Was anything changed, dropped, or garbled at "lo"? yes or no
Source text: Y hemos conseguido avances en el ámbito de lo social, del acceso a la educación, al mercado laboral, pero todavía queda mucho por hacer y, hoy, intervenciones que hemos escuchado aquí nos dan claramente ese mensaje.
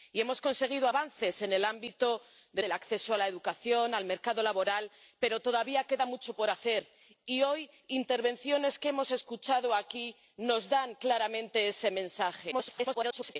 yes